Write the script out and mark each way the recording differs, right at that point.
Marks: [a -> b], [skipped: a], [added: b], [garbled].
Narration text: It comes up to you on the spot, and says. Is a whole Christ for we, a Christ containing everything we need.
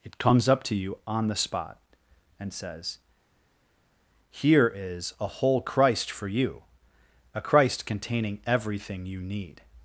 It comes up to you on the spot, and says. [added: Here] Is a whole Christ for [we, -> you] a Christ containing everything [we -> you] need.